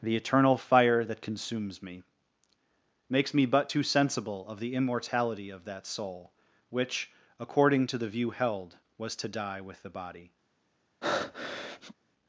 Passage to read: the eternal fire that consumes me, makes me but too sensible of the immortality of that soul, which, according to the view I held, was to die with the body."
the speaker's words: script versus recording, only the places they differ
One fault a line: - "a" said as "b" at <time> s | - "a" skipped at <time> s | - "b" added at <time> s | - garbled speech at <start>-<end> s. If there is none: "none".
- "I" skipped at 8.3 s